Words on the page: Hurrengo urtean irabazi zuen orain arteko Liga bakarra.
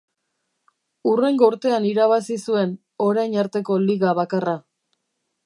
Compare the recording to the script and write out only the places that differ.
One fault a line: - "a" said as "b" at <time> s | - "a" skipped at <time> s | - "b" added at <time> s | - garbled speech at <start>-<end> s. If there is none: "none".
none